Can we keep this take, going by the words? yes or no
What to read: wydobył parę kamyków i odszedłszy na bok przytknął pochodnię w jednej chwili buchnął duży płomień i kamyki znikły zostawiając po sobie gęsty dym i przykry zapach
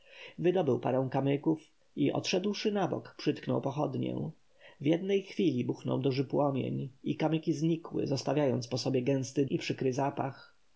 no